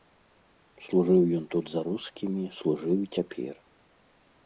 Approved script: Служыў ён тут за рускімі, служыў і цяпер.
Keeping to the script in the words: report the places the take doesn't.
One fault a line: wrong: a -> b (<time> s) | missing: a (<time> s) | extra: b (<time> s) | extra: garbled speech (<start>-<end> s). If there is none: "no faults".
no faults